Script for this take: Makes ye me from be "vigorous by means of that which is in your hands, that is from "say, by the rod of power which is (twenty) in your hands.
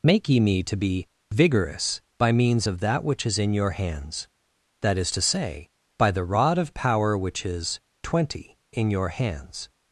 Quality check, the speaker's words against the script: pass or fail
fail